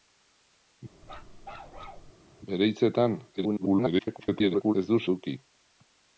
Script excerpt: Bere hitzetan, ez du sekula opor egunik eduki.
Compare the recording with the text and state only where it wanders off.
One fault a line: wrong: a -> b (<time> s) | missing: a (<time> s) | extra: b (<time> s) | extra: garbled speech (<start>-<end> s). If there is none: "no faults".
extra: garbled speech (3.4-4.7 s)
missing: sekula opor egunik (5.0 s)